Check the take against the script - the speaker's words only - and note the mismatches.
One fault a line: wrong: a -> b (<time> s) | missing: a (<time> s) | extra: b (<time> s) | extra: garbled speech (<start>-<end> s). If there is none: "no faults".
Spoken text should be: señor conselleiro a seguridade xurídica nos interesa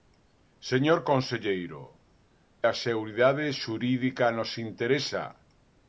no faults